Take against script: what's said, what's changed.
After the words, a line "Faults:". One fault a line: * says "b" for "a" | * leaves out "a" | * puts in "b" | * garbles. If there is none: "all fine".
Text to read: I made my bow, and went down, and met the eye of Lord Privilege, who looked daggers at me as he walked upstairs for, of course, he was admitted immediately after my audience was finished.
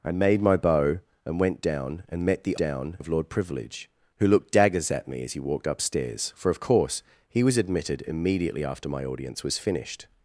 I made my bow, and went down, and met the down of Lord Privilege, who looked daggers at me as he walked upstairs for, of course, he was admitted immediately after my audience was finished.
Faults:
* says "down" for "eye"